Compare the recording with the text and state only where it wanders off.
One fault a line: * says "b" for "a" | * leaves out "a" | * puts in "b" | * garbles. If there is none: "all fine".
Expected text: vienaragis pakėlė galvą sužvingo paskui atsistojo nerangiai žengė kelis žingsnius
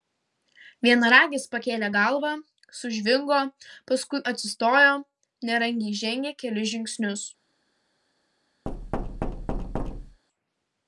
all fine